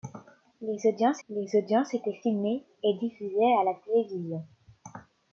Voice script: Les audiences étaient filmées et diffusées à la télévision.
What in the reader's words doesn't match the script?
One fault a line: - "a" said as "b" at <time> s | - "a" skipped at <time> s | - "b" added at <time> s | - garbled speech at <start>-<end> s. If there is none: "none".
- "les audiences" added at 1.3 s